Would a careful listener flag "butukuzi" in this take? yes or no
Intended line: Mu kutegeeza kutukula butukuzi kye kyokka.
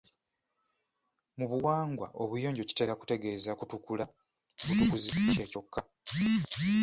no